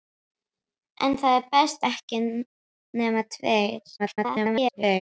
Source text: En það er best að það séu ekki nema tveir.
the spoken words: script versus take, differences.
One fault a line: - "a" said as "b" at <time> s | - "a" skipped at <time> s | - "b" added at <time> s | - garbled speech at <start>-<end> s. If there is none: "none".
- "að það séu" skipped at 1.8 s
- garbled speech at 4.0-5.0 s